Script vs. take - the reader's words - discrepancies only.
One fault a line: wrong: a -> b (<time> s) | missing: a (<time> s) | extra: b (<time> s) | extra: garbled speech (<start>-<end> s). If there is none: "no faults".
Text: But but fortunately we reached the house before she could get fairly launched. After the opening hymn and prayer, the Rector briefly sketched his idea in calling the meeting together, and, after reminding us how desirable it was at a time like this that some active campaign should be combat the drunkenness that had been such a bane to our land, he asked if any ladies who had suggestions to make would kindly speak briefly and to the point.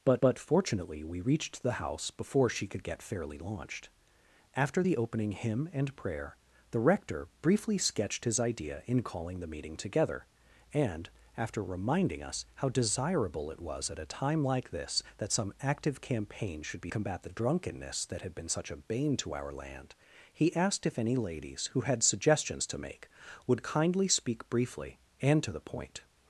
no faults